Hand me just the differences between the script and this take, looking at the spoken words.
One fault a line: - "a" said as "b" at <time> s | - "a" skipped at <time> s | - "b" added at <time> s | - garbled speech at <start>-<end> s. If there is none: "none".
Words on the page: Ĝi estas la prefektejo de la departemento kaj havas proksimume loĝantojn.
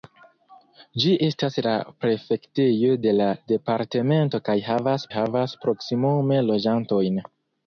- "havas" added at 5.2 s